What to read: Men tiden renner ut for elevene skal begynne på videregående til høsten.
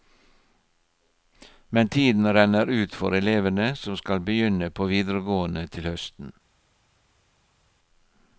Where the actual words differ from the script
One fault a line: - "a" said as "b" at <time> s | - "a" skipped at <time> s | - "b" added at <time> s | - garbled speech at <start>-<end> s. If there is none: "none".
- "som" added at 3.8 s